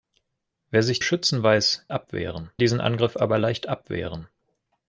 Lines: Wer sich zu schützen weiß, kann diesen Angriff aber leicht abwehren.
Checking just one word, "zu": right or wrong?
wrong